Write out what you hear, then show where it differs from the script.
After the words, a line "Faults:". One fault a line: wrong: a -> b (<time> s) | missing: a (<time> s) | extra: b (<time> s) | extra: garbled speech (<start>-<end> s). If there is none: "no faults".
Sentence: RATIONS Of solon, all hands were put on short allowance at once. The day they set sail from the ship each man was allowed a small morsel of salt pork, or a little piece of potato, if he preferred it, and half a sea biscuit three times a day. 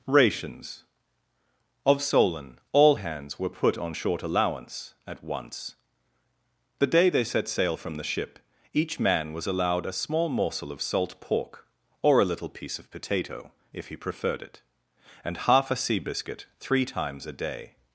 RATIONS Of solon, all hands were put on short allowance at once. The day they set sail from the ship each man was allowed a small morsel of salt pork, or a little piece of potato, if he preferred it, and half a sea biscuit three times a day.
Faults:
no faults